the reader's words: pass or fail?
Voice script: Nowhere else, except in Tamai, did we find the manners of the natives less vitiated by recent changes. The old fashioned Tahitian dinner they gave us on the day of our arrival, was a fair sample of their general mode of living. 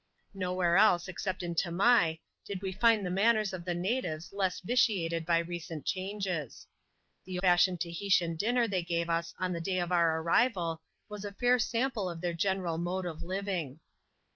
fail